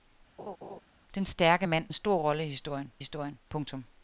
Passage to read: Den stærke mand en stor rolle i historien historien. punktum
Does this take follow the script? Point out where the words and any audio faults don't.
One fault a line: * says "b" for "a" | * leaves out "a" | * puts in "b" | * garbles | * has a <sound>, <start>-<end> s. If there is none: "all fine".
* has a laugh, 0.4-0.8 s